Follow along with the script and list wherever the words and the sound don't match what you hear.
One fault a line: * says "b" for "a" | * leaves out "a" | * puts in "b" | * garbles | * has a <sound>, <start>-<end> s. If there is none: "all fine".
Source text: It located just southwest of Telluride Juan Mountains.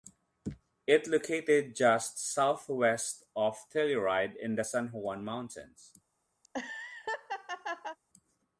* puts in "in the San"
* has a laugh, 6.4-8.0 s